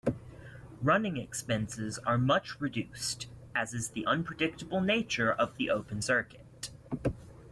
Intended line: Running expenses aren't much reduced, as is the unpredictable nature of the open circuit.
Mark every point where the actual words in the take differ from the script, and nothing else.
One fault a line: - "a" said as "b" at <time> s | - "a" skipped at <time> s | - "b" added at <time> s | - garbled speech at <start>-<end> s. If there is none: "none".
- "aren't" said as "are" at 2.0 s